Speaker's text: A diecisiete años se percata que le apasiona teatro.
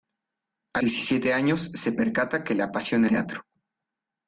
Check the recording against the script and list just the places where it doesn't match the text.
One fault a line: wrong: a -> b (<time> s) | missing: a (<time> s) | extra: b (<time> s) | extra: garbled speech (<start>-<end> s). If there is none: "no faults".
no faults